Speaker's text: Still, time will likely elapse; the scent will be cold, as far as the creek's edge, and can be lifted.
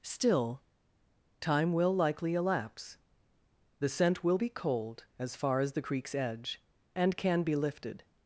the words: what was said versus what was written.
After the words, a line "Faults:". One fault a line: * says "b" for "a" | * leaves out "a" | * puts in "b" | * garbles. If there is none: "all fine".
Still, time will likely elapse; the scent will be cold, as far as the creek's edge, and can be lifted.
Faults:
all fine